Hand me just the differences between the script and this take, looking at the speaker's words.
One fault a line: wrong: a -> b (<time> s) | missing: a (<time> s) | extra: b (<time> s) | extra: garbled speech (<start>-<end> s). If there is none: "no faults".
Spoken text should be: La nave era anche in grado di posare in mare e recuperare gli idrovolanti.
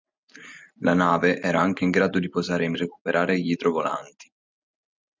missing: mare (2.7 s)